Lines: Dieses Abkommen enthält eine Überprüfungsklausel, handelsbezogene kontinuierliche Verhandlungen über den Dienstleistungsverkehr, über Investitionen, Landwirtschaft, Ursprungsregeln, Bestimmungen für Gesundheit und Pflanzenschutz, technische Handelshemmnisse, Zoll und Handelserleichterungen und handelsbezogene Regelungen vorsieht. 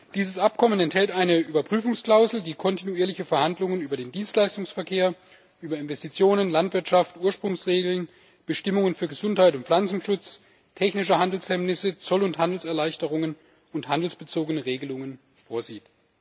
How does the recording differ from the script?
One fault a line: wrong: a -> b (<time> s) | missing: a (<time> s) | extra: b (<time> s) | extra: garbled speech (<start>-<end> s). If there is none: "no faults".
wrong: handelsbezogene -> die (2.4 s)